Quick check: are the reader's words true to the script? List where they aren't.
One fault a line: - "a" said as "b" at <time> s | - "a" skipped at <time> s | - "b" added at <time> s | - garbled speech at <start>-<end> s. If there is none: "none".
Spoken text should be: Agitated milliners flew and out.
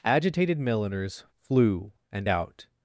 none